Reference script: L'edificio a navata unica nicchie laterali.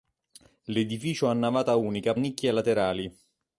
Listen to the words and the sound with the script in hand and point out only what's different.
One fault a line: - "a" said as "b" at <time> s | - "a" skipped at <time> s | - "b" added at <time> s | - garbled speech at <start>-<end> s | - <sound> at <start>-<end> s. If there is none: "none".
none